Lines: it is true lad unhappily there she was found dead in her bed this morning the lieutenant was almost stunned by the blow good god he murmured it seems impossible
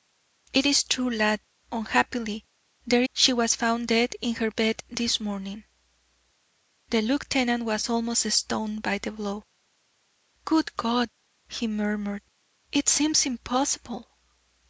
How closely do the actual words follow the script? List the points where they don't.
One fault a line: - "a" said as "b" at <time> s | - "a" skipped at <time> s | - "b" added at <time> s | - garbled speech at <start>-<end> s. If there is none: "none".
none